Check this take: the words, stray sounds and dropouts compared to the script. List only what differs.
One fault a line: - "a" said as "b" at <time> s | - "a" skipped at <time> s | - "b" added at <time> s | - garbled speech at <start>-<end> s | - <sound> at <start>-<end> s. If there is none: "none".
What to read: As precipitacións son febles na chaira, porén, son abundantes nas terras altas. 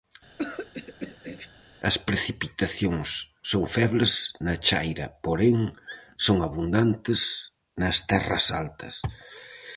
- throat clearing at 0.4-1.5 s